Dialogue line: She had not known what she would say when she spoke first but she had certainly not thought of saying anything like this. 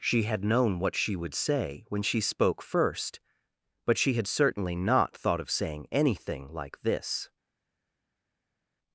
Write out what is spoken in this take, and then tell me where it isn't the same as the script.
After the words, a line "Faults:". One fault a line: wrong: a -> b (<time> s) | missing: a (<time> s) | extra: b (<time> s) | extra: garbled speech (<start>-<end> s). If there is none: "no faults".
She had known what she would say when she spoke first but she had certainly not thought of saying anything like this.
Faults:
missing: not (0.4 s)